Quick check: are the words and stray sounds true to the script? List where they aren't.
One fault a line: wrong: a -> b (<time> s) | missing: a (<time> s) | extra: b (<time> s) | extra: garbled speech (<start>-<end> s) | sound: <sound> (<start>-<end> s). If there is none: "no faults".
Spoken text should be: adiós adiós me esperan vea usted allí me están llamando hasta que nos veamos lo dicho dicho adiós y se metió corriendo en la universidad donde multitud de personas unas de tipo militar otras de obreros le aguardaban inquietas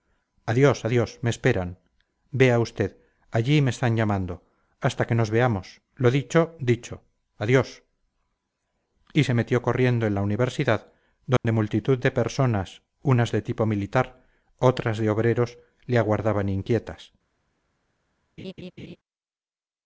sound: dropout (11.4-11.4 s)
sound: laugh (18.4-19.0 s)